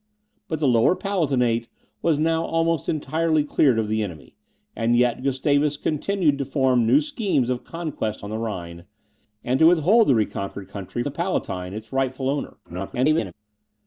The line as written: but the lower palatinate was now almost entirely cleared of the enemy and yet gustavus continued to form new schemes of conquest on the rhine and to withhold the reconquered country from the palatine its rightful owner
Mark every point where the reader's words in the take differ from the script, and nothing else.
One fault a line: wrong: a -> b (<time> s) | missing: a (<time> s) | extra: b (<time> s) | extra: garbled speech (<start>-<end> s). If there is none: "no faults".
missing: from (11.0 s)
extra: garbled speech (12.6-13.3 s)